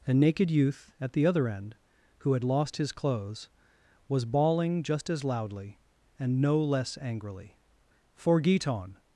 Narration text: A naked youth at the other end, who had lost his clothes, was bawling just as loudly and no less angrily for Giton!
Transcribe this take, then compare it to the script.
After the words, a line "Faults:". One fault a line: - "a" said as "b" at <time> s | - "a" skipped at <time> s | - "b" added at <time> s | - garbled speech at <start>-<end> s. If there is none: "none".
A naked youth at the other end, who had lost his clothes, was bawling just as loudly and no less angrily for Giton!
Faults:
none